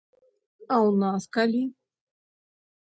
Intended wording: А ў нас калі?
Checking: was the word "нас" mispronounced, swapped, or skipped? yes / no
no